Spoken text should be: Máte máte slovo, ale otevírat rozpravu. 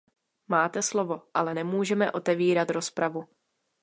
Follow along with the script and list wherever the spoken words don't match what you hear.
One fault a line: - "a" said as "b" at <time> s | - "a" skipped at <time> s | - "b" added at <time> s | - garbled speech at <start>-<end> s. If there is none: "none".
- "máte" skipped at 0.8 s
- "nemůžeme" added at 1.5 s